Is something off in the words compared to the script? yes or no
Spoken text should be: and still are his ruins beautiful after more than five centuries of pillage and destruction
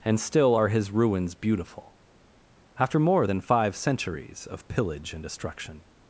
no